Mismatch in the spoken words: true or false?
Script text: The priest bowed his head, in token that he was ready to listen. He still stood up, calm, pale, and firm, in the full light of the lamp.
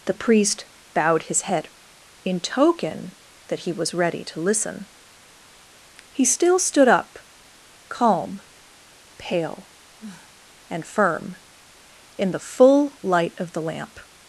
false